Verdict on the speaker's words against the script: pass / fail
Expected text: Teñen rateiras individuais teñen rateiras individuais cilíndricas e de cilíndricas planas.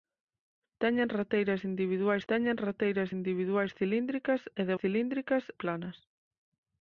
pass